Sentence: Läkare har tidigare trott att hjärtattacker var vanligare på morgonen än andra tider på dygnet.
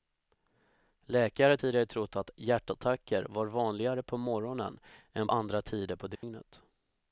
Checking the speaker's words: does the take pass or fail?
pass